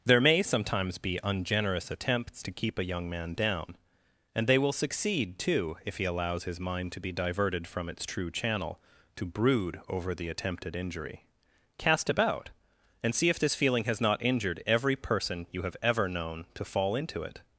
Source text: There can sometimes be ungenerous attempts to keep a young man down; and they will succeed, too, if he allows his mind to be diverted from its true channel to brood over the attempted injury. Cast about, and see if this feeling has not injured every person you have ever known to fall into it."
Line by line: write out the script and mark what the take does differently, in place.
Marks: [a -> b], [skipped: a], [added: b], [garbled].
There [can -> may] sometimes be ungenerous attempts to keep a young man down; and they will succeed, too, if he allows his mind to be diverted from its true channel to brood over the attempted injury. Cast about, and see if this feeling has not injured every person you have ever known to fall into it."